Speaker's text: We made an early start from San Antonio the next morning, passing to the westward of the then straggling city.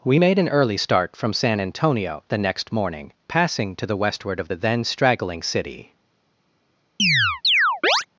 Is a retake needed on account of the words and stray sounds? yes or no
yes